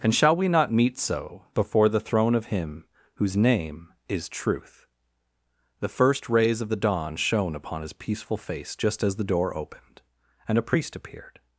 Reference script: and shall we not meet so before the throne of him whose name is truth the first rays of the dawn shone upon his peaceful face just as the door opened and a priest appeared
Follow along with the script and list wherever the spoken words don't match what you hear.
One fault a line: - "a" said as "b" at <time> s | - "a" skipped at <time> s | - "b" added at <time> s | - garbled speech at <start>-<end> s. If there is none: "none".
none